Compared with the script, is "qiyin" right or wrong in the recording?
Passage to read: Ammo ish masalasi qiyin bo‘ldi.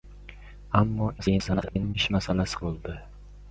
wrong